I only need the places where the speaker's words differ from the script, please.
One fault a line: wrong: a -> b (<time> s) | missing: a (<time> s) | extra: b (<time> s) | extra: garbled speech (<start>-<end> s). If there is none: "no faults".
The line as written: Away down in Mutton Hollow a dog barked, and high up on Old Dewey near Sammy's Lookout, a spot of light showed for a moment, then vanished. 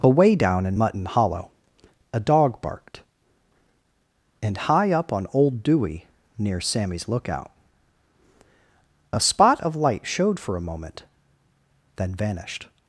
no faults